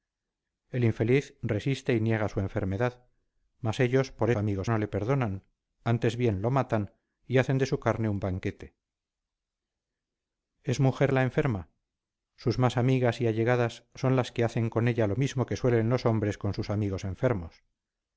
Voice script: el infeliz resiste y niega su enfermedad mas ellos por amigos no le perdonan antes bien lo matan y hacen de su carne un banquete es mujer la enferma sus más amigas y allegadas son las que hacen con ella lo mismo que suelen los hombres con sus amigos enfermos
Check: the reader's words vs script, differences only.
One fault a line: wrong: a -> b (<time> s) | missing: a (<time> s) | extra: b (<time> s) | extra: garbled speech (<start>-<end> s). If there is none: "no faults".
no faults